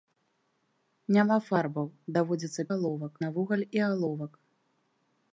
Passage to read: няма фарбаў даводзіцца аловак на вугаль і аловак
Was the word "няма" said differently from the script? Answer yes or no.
no